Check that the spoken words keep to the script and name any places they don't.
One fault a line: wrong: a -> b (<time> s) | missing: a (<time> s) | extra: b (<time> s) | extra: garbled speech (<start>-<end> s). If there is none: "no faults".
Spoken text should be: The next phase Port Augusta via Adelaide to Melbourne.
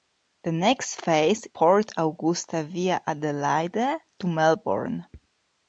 no faults